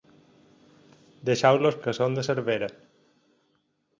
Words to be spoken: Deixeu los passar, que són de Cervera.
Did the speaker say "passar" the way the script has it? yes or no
no